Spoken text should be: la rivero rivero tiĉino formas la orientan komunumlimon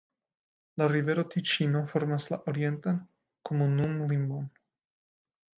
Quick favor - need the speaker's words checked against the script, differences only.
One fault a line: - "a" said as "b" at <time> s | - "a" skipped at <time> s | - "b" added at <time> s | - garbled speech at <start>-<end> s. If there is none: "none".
- "rivero" skipped at 1.2 s